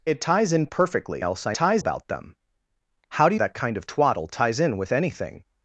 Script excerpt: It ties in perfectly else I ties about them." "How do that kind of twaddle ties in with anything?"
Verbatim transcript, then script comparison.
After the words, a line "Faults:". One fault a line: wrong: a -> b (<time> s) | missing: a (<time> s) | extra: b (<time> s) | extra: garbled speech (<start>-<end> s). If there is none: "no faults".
It ties in perfectly else I ties about them." "How do that kind of twaddle ties in with anything?"
Faults:
no faults